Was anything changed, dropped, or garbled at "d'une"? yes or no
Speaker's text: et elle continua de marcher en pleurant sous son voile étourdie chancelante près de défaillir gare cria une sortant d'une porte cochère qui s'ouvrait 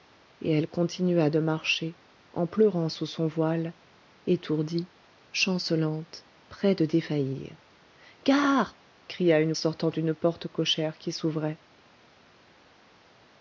no